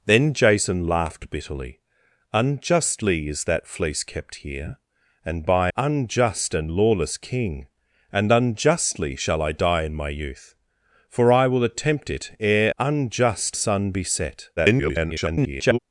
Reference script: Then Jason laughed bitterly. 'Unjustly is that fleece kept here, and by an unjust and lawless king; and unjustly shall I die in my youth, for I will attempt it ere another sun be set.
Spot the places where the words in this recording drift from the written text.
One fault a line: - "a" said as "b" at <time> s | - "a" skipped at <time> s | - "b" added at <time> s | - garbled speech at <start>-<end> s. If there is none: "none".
- "an" skipped at 5.7 s
- "another" said as "unjust" at 12.8 s
- garbled speech at 14.6-15.8 s